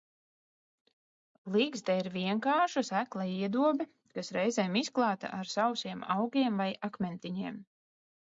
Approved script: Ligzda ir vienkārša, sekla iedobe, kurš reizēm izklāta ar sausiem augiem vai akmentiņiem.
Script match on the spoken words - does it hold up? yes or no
no